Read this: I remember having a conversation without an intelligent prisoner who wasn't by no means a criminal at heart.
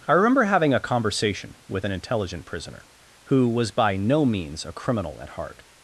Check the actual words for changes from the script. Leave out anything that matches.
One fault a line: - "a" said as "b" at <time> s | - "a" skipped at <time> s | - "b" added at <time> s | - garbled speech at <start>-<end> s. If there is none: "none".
- "without" said as "with" at 1.7 s
- "wasn't" said as "was" at 3.5 s